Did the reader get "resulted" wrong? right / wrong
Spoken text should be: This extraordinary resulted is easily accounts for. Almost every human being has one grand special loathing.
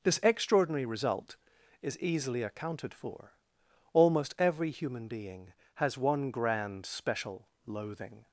wrong